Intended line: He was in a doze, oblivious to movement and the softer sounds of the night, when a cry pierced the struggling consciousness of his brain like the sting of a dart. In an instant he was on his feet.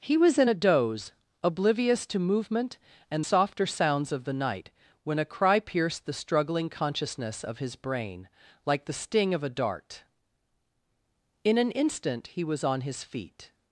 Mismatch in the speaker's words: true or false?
true